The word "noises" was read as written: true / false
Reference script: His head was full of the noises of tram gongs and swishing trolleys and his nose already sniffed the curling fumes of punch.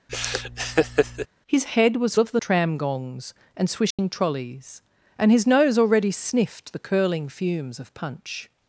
false